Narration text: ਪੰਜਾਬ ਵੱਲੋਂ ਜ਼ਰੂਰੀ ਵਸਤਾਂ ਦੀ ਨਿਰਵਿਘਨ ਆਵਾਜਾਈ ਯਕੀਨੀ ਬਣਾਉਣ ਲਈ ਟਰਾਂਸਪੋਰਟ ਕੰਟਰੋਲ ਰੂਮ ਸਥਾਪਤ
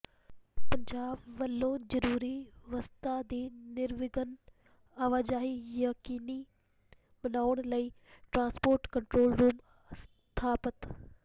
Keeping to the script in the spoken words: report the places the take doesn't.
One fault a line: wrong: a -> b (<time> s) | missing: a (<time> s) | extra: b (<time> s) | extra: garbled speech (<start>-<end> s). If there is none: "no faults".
no faults